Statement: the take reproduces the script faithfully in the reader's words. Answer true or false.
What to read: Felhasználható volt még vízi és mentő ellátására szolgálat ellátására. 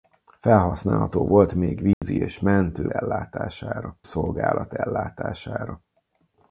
true